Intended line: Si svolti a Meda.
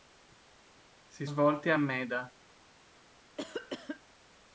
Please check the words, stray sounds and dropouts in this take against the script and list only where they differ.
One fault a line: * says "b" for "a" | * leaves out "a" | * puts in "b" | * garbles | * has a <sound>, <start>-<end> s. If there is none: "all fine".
* has a cough, 3.4-4.0 s